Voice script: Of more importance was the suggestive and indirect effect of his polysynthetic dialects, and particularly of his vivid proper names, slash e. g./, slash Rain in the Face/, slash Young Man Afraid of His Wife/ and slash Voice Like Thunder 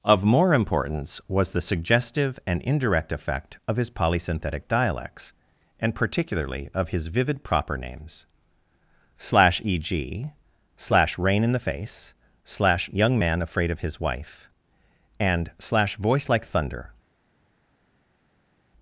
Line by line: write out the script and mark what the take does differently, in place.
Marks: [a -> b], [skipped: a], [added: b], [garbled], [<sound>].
Of more importance was the suggestive and indirect effect of his polysynthetic dialects, and particularly of his vivid proper names, slash e. g./, slash Rain in the Face/, slash Young Man Afraid of His Wife/ and slash Voice Like Thunder